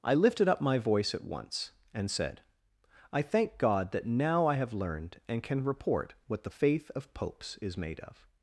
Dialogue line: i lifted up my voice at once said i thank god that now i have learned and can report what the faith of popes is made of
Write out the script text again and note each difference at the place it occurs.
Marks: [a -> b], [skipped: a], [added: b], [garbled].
i lifted up my voice at once [added: and] said i thank god that now i have learned and can report what the faith of popes is made of